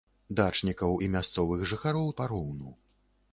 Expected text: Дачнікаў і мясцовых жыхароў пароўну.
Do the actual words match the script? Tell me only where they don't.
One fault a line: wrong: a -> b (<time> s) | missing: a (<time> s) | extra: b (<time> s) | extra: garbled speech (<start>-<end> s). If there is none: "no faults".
no faults